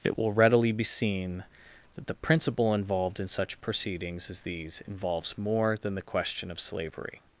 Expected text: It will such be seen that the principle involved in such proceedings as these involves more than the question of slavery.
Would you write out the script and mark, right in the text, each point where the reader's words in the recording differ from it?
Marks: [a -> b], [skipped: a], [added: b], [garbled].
It will [such -> readily] be seen that the principle involved in such proceedings as these involves more than the question of slavery.